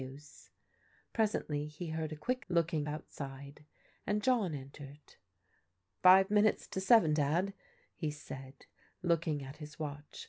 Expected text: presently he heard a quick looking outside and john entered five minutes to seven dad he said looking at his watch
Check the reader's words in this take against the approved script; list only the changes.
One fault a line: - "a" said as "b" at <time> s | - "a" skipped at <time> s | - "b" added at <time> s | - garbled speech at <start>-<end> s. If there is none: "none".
none